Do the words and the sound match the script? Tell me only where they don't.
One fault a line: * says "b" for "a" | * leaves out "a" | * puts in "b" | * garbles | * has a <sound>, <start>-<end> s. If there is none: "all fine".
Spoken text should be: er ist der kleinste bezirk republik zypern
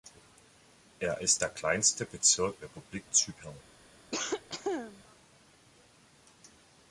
* has a cough, 4.1-5.0 s